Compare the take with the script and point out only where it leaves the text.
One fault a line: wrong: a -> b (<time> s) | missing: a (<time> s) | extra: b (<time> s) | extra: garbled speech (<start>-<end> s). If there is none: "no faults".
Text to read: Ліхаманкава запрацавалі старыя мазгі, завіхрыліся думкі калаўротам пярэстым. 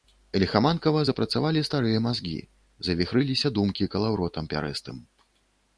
no faults